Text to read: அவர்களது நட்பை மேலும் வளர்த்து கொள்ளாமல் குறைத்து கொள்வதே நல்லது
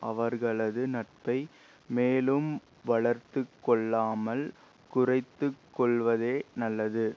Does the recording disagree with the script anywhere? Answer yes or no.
no